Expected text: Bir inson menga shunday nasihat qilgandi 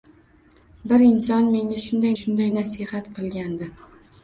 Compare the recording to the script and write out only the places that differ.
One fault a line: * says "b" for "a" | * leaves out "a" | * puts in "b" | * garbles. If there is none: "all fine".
* puts in "shunday"